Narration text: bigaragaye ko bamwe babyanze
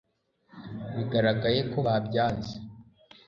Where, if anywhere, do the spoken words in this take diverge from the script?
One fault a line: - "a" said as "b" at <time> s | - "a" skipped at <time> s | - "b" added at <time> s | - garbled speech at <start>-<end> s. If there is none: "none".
- "bamwe" skipped at 1.8 s